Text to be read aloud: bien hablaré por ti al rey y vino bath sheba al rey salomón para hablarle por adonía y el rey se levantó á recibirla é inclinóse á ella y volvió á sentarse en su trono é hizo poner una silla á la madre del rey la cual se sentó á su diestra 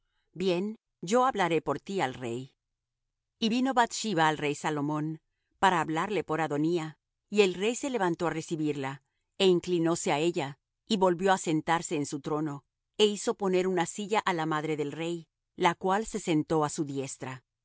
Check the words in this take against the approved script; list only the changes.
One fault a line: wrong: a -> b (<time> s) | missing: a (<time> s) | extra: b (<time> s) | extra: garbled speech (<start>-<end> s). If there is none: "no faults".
extra: yo (1.0 s)